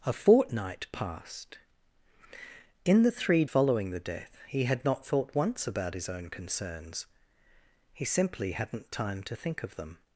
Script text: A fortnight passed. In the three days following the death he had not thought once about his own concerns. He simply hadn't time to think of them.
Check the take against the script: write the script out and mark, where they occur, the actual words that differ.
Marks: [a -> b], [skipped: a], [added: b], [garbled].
A fortnight passed. In the three [skipped: days] following the death he had not thought once about his own concerns. He simply hadn't time to think of them.